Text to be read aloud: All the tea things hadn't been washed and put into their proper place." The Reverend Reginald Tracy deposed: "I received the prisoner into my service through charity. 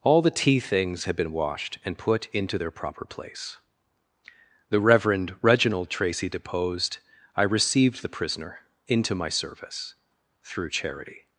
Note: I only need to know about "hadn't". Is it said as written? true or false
false